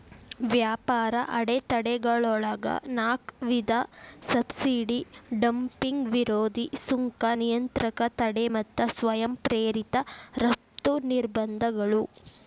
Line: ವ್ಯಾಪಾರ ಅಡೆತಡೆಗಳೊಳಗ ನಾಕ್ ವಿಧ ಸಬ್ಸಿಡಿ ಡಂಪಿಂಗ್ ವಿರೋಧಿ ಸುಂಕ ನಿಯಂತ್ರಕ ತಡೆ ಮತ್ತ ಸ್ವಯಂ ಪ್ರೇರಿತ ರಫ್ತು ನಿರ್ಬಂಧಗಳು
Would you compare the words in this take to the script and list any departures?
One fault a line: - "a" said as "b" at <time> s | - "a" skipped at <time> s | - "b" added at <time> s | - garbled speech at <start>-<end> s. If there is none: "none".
none